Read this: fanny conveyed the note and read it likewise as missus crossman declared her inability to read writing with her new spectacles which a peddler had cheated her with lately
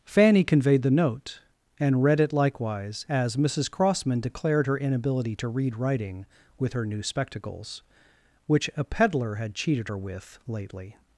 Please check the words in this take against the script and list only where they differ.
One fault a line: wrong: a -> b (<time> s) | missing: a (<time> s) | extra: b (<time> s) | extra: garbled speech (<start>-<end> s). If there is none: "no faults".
no faults